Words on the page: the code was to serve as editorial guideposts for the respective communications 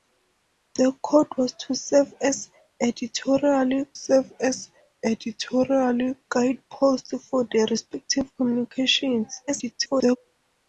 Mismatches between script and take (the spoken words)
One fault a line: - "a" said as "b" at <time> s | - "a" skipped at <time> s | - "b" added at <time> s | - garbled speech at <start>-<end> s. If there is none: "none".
- "serve as editorial" added at 3.9 s
- garbled speech at 9.5-10.2 s